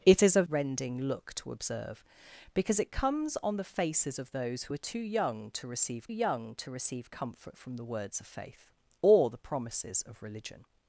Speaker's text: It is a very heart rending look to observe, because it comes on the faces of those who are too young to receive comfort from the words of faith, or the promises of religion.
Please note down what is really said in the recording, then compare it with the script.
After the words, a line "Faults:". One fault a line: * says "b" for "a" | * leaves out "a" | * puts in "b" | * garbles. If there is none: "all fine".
It is a rending look to observe, because it comes on the faces of those who are too young to receive young to receive comfort from the words of faith, or the promises of religion.
Faults:
* leaves out "very heart"
* puts in "young to receive"